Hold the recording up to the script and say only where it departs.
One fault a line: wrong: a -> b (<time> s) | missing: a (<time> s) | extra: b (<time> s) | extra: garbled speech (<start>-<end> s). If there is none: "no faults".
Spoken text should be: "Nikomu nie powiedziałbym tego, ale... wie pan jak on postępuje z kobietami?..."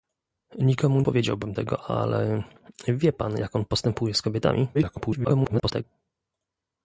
missing: nie (1.0 s)
extra: garbled speech (4.7-5.8 s)